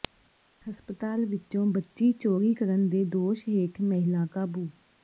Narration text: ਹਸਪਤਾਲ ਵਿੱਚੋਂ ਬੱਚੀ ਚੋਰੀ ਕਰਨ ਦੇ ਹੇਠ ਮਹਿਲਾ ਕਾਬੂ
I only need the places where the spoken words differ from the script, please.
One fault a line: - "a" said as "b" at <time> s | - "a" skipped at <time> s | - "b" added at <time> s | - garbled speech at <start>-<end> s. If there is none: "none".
- "ਦੋਸ਼" added at 3.1 s